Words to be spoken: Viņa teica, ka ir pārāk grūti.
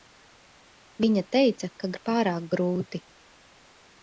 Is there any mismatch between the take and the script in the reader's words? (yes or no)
no